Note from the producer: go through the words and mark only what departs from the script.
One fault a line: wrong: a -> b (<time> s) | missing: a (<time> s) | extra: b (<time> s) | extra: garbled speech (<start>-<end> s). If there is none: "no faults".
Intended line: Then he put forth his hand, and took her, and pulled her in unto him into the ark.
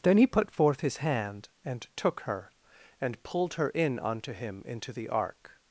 no faults